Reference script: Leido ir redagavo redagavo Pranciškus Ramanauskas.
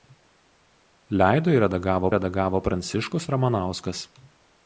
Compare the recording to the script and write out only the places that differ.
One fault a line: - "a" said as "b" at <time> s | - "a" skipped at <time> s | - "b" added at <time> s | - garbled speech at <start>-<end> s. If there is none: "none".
none